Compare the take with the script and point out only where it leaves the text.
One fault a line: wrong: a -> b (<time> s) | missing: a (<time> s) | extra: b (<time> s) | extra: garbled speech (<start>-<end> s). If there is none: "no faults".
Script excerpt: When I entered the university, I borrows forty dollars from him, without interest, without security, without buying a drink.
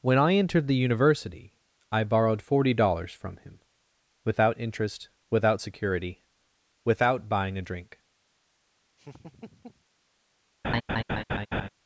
wrong: borrows -> borrowed (2.0 s)